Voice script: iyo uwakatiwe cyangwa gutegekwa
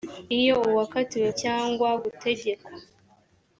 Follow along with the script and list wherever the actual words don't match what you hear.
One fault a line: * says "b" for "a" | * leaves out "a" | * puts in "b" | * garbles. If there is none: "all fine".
all fine